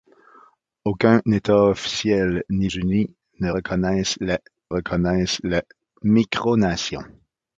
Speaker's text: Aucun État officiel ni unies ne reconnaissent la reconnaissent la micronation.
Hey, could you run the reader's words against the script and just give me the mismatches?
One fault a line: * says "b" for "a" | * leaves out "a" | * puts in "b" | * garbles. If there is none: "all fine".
all fine